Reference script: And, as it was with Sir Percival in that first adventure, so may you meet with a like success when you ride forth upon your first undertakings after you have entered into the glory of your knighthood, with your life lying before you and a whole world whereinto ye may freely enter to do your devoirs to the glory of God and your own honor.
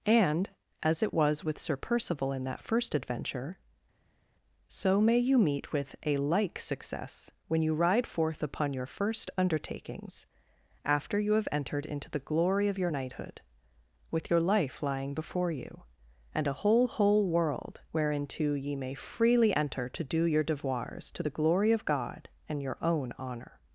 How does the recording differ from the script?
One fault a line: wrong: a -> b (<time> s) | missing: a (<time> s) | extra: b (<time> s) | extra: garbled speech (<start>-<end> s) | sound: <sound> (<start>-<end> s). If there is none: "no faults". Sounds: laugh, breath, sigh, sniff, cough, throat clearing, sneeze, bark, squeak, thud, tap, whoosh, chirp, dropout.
extra: whole (16.9 s)